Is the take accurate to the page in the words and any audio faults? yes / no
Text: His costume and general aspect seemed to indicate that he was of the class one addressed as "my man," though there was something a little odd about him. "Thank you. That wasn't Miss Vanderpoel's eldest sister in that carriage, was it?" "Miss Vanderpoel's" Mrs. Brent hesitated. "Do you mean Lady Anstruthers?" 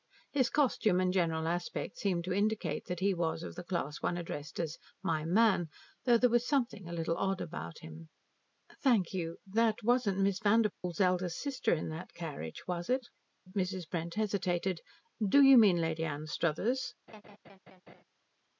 no